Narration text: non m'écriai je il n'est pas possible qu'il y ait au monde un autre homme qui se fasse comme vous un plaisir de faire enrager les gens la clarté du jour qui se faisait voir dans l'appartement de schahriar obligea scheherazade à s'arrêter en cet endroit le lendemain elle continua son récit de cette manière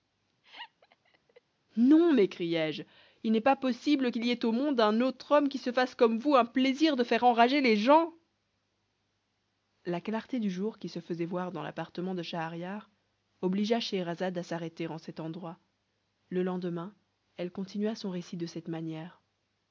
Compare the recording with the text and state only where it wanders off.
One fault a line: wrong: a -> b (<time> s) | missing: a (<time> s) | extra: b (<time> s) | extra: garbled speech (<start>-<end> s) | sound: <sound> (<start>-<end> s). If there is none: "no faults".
sound: laugh (0.4-1.4 s)